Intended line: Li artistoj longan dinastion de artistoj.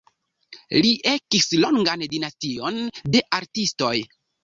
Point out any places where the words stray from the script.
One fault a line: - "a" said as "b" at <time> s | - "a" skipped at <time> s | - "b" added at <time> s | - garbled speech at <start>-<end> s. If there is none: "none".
- "artistoj" said as "ekis" at 1.1 s